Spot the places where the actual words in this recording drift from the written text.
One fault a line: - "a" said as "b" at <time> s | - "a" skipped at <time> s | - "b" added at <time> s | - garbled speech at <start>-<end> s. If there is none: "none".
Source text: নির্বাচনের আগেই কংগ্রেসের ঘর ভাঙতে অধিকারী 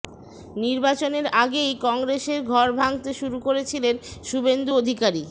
- "শুরু করেছিলেন শুভেন্দু" added at 3.1 s